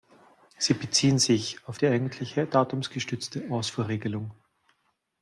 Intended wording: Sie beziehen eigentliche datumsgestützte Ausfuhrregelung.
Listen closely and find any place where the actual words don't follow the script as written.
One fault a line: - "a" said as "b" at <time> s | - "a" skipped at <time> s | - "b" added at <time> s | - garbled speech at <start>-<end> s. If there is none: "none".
- "sich auf die" added at 1.2 s